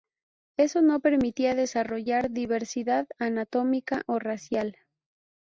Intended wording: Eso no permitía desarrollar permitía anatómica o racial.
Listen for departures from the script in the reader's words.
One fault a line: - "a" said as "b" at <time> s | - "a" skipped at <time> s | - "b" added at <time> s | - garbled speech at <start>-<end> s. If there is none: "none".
- "permitía" said as "diversidad" at 2.3 s